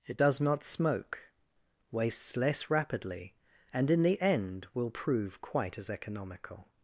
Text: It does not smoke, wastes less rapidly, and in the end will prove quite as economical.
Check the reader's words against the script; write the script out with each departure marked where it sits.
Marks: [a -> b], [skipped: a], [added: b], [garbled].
It does not smoke, wastes less rapidly, and in the end will prove quite as economical.